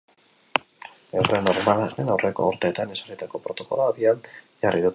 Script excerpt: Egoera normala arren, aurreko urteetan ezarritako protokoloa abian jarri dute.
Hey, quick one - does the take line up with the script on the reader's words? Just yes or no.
yes